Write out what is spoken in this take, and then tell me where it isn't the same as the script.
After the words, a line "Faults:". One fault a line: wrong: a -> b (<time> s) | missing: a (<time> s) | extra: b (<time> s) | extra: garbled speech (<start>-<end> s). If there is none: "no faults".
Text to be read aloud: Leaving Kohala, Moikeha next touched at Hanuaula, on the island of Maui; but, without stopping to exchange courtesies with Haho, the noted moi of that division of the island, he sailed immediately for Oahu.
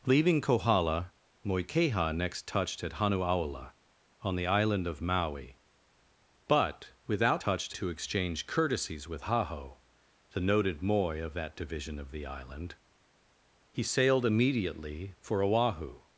Leaving Kohala, Moikeha next touched at Hanuaula, on the island of Maui; but, without touched to exchange courtesies with Haho, the noted moi of that division of the island, he sailed immediately for Oahu.
Faults:
wrong: stopping -> touched (7.4 s)